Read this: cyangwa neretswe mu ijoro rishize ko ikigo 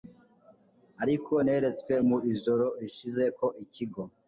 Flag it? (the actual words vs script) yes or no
yes